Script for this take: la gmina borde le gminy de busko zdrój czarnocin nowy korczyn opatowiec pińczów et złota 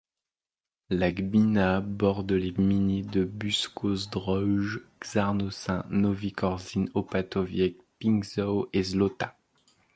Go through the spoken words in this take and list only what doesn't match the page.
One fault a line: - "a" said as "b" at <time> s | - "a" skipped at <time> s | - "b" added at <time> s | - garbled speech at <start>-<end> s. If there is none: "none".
- "le" said as "les" at 2.3 s